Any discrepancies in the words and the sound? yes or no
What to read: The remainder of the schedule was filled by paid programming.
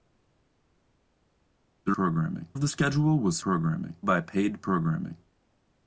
yes